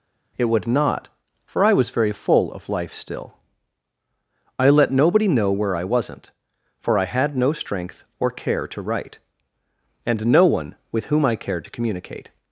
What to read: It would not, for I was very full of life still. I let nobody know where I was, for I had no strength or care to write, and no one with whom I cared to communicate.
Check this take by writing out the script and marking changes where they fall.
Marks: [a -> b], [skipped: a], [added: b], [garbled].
It would not, for I was very full of life still. I let nobody know where I [was, -> wasn't] for I had no strength or care to write, and no one with whom I cared to communicate.